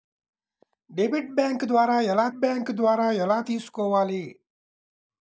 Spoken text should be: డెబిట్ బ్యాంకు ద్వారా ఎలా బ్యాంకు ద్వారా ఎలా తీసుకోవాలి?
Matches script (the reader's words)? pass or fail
pass